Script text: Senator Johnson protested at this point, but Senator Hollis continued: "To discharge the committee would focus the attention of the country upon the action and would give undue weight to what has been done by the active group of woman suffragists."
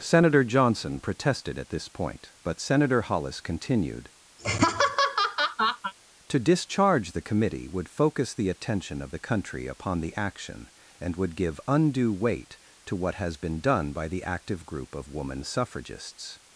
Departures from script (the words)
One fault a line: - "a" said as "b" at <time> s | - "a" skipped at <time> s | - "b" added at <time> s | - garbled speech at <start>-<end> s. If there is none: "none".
none